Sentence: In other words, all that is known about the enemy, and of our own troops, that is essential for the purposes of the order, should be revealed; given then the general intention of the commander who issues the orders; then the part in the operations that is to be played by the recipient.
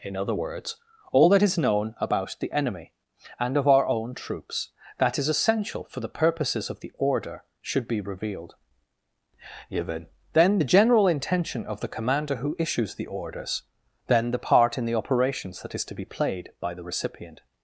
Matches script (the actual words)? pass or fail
pass